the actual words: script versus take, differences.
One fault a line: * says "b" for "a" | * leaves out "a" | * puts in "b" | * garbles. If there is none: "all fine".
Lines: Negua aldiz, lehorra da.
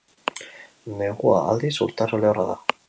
* puts in "urtaro"